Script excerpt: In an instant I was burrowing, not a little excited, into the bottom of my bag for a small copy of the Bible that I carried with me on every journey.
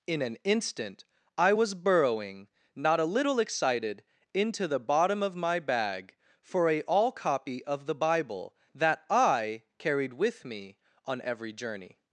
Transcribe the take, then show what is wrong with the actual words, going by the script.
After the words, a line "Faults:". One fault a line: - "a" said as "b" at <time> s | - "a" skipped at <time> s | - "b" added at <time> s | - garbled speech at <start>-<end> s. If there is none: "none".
In an instant I was burrowing, not a little excited, into the bottom of my bag for a all copy of the Bible that I carried with me on every journey.
Faults:
- "small" said as "all" at 6.8 s